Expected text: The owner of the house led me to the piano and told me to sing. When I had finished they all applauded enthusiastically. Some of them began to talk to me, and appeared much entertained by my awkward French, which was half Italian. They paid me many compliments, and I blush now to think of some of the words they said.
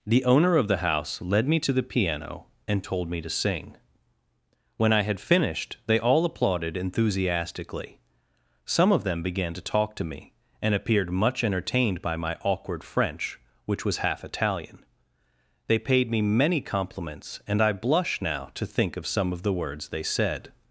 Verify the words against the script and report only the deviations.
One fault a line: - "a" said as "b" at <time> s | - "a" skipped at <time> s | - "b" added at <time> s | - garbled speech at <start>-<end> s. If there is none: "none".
none